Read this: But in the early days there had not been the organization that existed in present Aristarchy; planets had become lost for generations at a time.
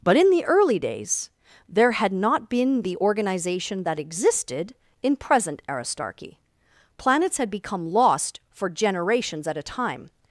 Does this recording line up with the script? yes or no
yes